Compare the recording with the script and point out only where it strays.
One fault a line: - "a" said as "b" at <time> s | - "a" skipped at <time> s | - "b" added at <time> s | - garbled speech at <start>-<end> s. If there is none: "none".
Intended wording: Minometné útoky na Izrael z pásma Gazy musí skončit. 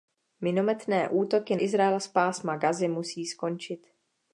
- "na" skipped at 1.6 s